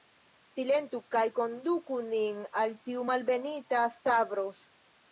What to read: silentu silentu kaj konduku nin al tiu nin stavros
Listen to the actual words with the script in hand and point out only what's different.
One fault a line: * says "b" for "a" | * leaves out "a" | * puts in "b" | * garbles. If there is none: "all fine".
* leaves out "silentu"
* says "malbenita" for "nin"